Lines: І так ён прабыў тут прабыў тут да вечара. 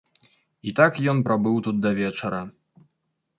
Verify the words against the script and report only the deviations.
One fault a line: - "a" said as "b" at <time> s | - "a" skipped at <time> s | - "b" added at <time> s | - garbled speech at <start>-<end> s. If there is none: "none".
- "прабыў тут" skipped at 1.8 s